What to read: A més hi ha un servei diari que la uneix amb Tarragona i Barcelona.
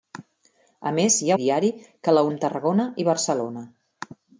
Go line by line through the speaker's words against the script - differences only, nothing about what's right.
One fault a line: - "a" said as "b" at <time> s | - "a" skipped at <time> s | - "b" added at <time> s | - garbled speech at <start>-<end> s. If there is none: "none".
- "un servei" skipped at 1.4 s
- "uneix" skipped at 2.2 s